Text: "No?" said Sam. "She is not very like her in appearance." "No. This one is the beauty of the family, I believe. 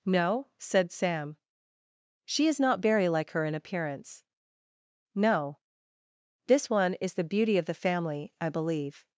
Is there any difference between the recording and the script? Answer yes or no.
no